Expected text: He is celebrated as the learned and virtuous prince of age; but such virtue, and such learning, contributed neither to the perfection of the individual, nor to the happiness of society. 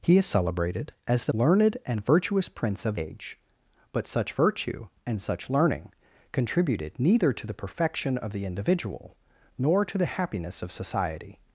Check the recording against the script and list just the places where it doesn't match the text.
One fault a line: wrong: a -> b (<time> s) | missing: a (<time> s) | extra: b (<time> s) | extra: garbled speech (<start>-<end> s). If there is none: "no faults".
no faults